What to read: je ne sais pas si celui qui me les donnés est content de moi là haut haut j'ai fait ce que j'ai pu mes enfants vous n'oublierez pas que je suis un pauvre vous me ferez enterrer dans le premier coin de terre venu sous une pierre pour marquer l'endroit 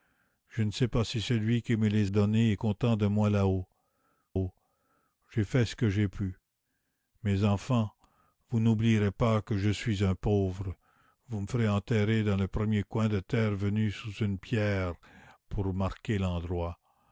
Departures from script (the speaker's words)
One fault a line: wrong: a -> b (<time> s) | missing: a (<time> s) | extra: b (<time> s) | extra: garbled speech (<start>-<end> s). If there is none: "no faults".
no faults